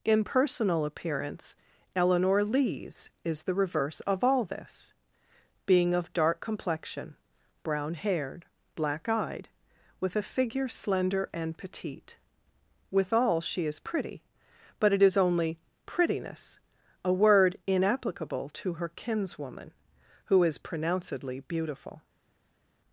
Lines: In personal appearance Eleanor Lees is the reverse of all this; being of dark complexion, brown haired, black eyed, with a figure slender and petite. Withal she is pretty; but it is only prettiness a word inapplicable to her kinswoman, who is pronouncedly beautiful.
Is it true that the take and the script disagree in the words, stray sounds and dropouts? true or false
false